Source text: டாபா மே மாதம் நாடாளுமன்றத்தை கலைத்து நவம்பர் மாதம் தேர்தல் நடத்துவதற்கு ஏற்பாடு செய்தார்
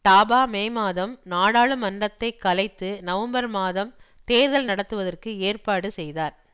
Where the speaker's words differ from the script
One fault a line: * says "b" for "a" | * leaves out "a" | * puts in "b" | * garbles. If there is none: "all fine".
all fine